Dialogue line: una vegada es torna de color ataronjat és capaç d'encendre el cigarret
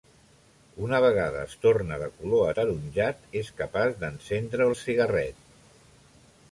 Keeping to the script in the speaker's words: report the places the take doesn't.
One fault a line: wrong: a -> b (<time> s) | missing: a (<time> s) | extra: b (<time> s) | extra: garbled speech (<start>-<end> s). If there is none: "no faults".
no faults